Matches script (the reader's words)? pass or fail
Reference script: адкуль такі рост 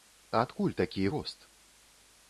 pass